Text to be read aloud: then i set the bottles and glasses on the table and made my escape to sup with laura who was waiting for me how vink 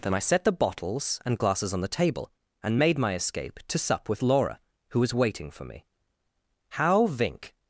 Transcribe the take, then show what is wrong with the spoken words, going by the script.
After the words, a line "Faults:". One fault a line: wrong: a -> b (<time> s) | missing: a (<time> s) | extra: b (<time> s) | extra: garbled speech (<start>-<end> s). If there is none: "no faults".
then i set the bottles and glasses on the table and made my escape to sup with laura who was waiting for me how vink
Faults:
no faults